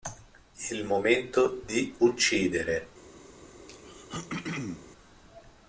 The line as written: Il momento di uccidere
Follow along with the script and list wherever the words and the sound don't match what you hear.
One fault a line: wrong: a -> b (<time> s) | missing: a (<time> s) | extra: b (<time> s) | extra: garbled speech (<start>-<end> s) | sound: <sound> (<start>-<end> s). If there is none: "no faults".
sound: throat clearing (3.7-4.9 s)